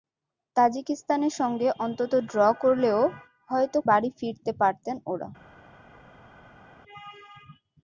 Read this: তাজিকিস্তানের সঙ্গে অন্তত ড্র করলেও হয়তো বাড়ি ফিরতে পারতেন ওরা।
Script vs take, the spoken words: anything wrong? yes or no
no